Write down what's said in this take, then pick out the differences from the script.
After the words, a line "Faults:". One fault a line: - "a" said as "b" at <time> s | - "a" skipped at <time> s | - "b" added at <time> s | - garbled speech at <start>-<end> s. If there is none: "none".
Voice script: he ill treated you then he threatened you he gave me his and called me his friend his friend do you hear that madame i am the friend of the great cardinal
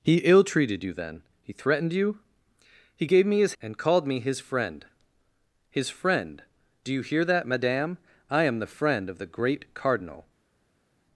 he ill treated you then he threatened you he gave me his and called me his friend his friend do you hear that madame i am the friend of the great cardinal
Faults:
none